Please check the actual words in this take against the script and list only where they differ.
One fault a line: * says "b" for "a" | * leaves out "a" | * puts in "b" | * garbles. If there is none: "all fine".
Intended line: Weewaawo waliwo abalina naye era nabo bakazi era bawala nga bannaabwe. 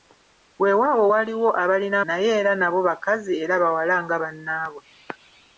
all fine